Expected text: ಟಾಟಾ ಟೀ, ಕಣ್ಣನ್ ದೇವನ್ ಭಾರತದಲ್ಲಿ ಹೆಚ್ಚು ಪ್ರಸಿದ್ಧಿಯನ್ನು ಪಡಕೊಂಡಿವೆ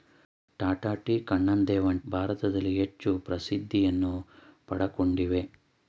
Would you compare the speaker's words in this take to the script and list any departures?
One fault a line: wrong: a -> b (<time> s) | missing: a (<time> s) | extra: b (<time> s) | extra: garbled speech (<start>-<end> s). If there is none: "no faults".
no faults